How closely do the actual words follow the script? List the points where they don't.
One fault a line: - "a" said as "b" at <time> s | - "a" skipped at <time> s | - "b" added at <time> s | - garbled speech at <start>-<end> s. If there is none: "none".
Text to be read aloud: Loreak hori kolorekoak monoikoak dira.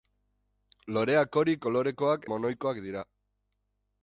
none